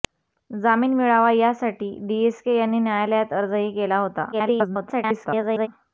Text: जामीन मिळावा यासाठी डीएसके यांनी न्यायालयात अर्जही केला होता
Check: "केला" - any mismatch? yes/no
no